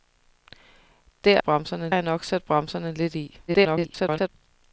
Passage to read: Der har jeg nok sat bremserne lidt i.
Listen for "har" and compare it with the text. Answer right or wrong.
wrong